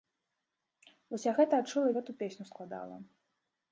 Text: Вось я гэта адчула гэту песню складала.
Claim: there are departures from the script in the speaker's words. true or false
false